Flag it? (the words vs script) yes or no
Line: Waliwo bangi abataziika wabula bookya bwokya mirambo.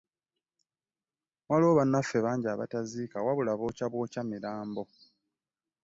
yes